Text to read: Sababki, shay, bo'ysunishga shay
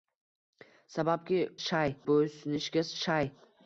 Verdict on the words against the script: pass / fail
pass